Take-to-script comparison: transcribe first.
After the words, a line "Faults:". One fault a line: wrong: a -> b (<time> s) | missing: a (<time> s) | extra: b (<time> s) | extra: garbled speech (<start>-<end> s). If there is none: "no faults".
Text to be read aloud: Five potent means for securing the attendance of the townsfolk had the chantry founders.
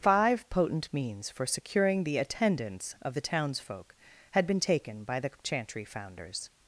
Five potent means for securing the attendance of the townsfolk had been taken by the chantry founders.
Faults:
extra: been taken by (4.5 s)